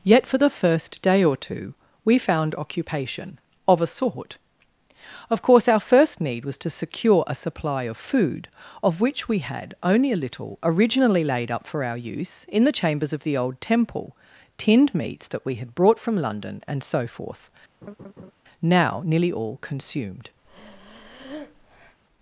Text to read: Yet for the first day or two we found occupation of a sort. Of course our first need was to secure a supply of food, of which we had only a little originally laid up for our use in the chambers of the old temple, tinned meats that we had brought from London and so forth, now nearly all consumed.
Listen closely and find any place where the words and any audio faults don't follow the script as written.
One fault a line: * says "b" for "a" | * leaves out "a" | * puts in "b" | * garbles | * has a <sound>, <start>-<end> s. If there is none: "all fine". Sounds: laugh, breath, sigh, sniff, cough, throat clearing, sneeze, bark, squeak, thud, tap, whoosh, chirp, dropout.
* has a laugh, 17.8-18.3 s
* has a breath, 20.4-22.0 s